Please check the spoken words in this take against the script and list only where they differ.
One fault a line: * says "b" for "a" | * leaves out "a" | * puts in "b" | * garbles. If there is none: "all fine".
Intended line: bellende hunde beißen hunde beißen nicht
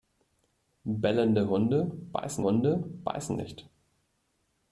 all fine